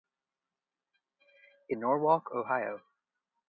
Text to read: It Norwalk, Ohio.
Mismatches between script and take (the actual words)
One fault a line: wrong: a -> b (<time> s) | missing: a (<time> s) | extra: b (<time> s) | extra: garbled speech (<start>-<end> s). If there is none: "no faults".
no faults